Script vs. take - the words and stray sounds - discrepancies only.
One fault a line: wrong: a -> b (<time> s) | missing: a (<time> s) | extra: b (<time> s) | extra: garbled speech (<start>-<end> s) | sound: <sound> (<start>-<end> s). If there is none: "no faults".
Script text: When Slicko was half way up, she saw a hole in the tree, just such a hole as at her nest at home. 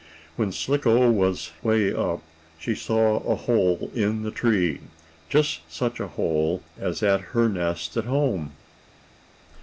missing: half (1.5 s)